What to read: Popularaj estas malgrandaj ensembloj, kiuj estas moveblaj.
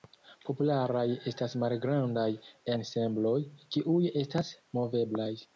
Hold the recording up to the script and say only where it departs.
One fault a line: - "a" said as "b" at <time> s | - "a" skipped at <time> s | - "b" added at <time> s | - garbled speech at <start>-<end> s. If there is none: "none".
none